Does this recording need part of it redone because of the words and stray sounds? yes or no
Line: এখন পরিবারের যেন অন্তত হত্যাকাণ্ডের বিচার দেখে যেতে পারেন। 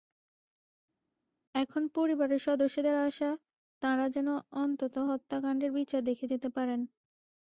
yes